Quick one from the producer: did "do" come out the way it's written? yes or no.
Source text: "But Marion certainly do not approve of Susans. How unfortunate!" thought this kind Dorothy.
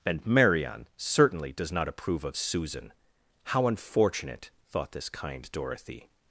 no